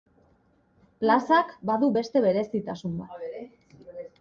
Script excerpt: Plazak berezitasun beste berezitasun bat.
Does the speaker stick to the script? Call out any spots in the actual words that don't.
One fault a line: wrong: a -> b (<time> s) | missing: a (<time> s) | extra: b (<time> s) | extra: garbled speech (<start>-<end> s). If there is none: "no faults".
wrong: berezitasun -> badu (1.7 s)